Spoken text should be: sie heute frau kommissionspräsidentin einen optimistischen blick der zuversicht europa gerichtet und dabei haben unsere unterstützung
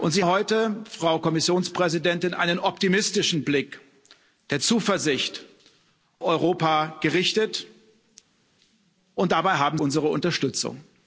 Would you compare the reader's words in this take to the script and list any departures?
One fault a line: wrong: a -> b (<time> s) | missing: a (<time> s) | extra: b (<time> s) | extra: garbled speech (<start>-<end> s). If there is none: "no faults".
no faults